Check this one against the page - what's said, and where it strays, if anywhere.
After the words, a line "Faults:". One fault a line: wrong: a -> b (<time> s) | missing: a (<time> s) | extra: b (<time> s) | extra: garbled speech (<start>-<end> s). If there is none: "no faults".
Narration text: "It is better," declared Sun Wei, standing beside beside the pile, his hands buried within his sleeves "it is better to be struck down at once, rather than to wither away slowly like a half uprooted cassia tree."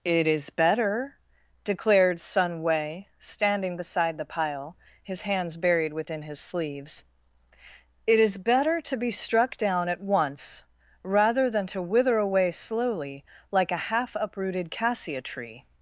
"It is better," declared Sun Wei, standing beside the pile, his hands buried within his sleeves "it is better to be struck down at once, rather than to wither away slowly like a half uprooted cassia tree."
Faults:
missing: beside (4.2 s)